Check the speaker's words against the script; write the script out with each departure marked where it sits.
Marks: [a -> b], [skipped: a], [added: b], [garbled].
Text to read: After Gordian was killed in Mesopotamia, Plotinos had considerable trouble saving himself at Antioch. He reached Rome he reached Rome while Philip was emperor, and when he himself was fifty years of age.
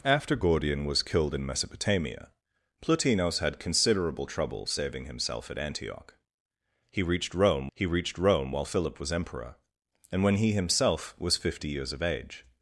After Gordian was killed in Mesopotamia, Plotinos had considerable trouble saving himself at Antioch. He reached Rome he reached Rome while Philip was emperor, and when he himself was fifty years of age.